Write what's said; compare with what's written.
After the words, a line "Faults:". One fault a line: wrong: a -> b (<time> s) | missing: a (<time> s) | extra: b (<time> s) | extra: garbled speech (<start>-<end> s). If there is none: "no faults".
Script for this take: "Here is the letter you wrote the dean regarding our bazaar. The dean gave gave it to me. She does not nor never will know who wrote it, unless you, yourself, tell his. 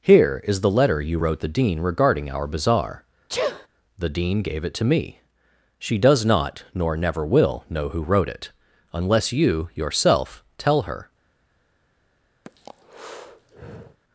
"Here is the letter you wrote the dean regarding our bazaar. The dean gave it to me. She does not nor never will know who wrote it, unless you, yourself, tell her.
Faults:
missing: gave (4.6 s)
wrong: his -> her (10.8 s)